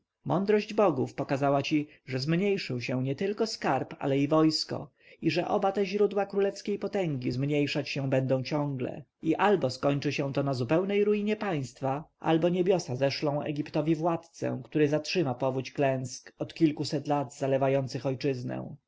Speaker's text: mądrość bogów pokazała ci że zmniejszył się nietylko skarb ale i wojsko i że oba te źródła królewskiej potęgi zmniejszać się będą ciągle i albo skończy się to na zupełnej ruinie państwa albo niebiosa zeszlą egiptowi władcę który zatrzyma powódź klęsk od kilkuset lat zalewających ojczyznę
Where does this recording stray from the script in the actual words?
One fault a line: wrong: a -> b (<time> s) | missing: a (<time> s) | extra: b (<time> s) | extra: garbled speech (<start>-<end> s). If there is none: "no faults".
no faults